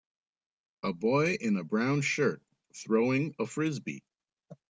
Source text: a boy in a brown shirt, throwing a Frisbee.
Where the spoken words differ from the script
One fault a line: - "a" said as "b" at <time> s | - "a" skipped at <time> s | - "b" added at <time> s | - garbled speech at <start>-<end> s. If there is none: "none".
none